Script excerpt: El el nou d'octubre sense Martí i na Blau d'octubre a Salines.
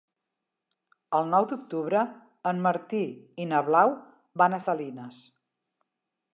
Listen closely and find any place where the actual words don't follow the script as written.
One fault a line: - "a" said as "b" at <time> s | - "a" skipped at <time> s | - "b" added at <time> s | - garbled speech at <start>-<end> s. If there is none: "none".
- "el" skipped at 1.3 s
- "sense" said as "en" at 2.5 s
- "d'octubre" said as "van" at 4.4 s